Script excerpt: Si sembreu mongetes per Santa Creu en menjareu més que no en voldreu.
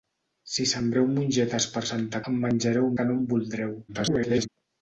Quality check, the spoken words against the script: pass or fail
fail